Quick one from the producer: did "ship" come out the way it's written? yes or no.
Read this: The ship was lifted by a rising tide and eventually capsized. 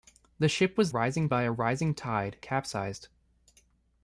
yes